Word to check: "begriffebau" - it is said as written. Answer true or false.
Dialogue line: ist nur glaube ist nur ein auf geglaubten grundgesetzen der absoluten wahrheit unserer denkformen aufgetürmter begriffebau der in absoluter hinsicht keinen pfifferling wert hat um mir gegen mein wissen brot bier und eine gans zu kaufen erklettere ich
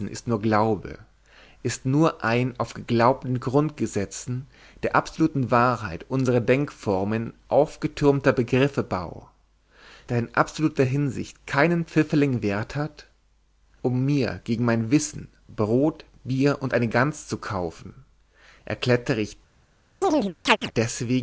true